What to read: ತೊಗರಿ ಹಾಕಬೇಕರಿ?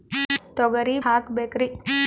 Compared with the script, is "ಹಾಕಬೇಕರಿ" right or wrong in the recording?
right